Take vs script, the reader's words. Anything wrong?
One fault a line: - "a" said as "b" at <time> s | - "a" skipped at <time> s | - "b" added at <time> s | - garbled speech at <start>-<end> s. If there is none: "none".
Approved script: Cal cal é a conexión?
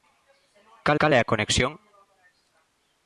none